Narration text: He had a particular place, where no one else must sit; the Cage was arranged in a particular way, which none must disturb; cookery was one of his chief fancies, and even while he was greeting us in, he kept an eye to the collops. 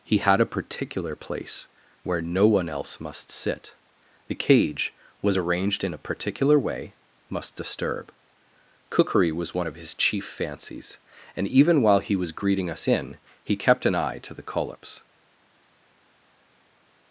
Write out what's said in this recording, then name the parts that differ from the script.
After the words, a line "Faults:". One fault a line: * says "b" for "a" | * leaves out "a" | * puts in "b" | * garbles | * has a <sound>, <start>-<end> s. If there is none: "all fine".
He had a particular place, where no one else must sit; the Cage was arranged in a particular way, must disturb; cookery was one of his chief fancies, and even while he was greeting us in, he kept an eye to the collops.
Faults:
* leaves out "which none"